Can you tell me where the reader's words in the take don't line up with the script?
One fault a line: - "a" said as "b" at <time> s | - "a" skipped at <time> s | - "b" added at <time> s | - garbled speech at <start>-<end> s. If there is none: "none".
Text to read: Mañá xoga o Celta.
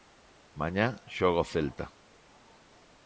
none